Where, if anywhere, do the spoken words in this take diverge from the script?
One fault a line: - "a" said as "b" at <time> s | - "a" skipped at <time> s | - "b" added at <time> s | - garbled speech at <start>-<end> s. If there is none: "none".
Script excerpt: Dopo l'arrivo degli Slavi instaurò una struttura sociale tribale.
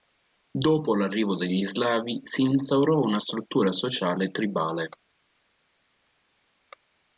- "si" added at 2.2 s